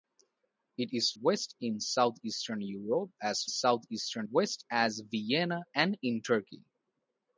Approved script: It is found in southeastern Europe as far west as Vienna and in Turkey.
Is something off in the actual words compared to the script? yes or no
yes